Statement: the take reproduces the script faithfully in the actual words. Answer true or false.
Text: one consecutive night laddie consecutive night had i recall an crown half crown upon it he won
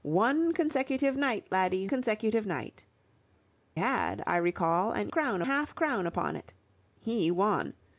true